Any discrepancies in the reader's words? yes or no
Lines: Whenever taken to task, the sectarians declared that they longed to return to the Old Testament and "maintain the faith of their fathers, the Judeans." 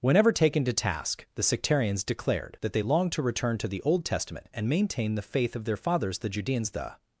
yes